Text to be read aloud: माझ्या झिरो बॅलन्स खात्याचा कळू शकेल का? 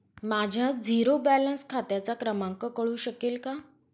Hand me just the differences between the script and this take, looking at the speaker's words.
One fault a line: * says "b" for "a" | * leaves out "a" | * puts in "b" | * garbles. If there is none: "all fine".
* puts in "क्रमांक"